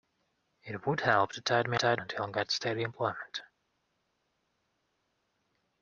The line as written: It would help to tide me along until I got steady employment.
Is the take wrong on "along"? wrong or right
wrong